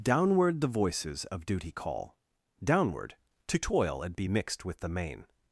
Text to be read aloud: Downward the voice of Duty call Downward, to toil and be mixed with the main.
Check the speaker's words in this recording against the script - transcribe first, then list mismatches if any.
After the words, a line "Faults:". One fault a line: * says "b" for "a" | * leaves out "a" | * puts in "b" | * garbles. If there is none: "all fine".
Downward the voices of Duty call Downward, to toil and be mixed with the main.
Faults:
* says "voices" for "voice"